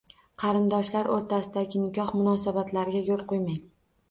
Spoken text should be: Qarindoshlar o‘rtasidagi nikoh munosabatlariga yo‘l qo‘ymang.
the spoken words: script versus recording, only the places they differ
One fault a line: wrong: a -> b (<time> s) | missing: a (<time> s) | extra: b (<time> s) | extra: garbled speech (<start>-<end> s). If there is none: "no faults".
no faults